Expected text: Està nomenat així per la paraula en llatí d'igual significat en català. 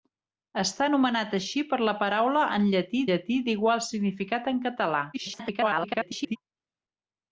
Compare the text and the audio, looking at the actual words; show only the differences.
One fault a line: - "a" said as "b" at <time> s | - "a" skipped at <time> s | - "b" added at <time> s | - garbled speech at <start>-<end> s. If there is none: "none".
- "llatí" added at 3.1 s
- garbled speech at 5.1-6.4 s